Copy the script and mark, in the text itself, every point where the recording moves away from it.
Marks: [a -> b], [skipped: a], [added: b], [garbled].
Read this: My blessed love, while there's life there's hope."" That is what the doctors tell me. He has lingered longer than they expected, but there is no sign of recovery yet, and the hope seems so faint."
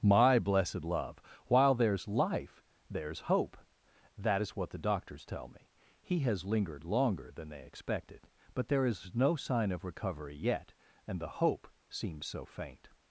My blessed love, while there's life there's hope."" That is what the doctors tell me. He has lingered longer than they expected, but there is no sign of recovery yet, and the hope seems so faint."